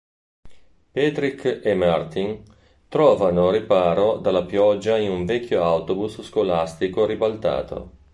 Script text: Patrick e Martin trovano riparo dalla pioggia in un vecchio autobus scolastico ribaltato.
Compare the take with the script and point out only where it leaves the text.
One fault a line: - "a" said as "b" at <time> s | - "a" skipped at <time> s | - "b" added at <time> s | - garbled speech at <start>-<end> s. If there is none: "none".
none